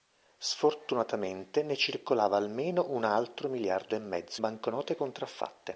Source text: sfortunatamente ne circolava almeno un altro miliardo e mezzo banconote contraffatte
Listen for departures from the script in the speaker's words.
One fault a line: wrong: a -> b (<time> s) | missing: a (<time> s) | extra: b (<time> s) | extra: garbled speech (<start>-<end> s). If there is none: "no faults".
no faults